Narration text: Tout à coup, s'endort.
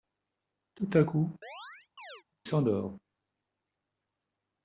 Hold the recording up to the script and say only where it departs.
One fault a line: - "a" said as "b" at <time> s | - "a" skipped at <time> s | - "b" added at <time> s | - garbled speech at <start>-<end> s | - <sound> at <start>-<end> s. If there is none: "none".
- chirp at 1.4-2.2 s